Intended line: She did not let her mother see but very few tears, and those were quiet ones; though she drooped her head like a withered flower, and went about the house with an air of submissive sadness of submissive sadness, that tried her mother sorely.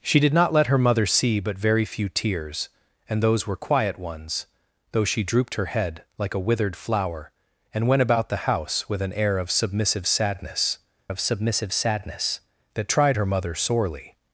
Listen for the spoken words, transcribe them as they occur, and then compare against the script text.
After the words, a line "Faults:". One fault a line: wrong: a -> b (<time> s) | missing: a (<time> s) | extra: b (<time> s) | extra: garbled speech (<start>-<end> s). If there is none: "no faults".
She did not let her mother see but very few tears, and those were quiet ones; though she drooped her head like a withered flower, and went about the house with an air of submissive sadness of submissive sadness, that tried her mother sorely.
Faults:
no faults